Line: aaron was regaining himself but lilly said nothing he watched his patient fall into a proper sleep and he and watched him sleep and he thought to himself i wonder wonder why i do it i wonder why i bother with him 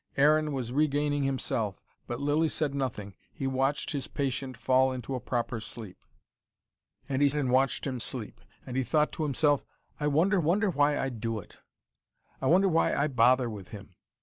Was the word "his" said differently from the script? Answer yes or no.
no